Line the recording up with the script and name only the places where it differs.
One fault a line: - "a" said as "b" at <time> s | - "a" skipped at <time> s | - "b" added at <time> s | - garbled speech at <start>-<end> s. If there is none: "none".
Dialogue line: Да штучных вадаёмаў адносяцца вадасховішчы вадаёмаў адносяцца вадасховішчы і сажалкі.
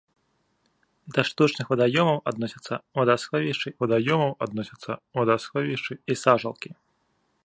none